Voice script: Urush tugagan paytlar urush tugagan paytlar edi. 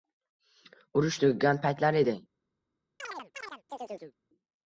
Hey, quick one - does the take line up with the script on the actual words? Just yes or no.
no